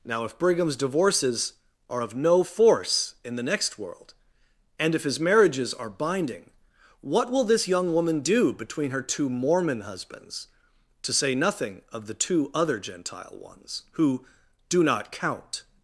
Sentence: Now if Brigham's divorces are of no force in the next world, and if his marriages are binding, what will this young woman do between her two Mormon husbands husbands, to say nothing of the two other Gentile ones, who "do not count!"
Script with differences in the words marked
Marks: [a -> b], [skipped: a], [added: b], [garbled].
Now if Brigham's divorces are of no force in the next world, and if his marriages are binding, what will this young woman do between her two Mormon husbands [skipped: husbands,] to say nothing of the two other Gentile ones, who "do not count!"